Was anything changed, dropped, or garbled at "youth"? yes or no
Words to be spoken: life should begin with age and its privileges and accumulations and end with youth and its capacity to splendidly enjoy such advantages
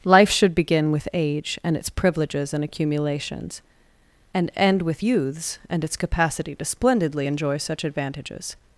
yes